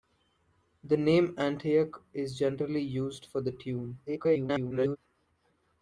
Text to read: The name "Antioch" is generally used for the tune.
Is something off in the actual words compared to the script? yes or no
yes